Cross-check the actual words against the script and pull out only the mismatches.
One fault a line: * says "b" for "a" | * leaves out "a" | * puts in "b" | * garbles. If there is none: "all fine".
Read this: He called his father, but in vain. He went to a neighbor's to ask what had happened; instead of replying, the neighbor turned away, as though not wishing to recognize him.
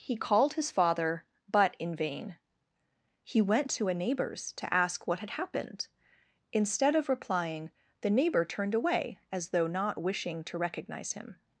all fine